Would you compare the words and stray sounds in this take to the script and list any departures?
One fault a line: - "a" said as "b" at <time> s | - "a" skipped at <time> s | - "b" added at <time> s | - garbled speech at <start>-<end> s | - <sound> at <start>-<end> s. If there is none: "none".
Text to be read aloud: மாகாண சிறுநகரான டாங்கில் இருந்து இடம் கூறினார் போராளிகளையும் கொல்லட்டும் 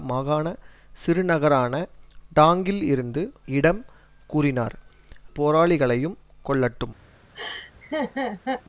- laugh at 7.3-8.6 s